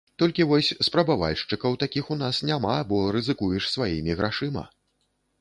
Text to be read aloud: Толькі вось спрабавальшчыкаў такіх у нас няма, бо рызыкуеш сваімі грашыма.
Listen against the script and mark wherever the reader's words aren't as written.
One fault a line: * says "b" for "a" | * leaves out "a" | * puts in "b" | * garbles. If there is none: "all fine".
all fine